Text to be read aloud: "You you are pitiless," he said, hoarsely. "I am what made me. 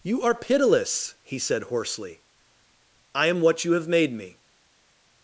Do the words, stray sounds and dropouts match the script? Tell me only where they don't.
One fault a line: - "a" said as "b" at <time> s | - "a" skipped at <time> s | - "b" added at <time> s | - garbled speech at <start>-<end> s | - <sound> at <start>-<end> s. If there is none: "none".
- "you" skipped at 0.2 s
- "you have" added at 3.6 s